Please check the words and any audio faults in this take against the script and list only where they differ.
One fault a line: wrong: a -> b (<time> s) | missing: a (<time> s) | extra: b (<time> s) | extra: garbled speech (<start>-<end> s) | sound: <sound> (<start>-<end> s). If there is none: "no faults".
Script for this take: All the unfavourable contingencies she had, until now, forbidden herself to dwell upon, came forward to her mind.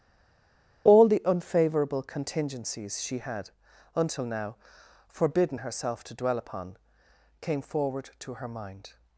no faults